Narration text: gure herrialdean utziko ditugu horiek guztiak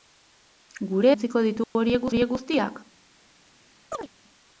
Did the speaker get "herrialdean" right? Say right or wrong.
wrong